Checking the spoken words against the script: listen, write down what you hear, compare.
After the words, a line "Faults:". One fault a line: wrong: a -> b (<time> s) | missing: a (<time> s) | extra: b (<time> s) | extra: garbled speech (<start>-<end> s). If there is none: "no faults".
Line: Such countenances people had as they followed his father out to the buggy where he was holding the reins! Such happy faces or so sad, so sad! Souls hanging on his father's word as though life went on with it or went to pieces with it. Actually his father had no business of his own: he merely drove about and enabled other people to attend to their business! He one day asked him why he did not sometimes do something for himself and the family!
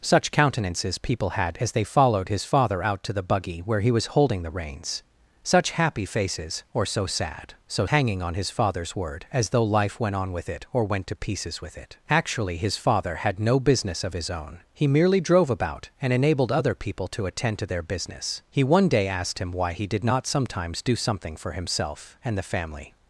Such countenances people had as they followed his father out to the buggy where he was holding the reins! Such happy faces or so sad, so hanging on his father's word as though life went on with it or went to pieces with it. Actually his father had no business of his own: he merely drove about and enabled other people to attend to their business! He one day asked him why he did not sometimes do something for himself and the family!
Faults:
missing: sad Souls (7.8 s)